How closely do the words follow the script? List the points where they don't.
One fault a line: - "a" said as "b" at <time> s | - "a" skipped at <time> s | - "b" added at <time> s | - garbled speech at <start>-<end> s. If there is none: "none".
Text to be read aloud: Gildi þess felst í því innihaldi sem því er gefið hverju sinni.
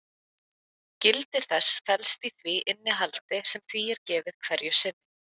none